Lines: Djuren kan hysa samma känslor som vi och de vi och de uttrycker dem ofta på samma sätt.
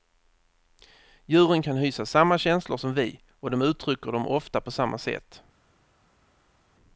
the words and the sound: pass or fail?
fail